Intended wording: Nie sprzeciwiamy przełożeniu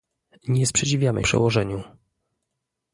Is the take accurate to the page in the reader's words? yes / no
yes